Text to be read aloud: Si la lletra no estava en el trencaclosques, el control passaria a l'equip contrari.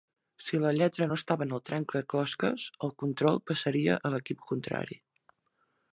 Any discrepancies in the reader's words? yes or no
no